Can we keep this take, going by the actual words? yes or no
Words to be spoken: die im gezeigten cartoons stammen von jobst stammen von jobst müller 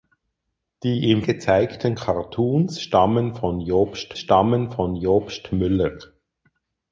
yes